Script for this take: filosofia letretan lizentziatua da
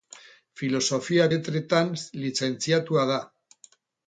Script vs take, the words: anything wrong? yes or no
no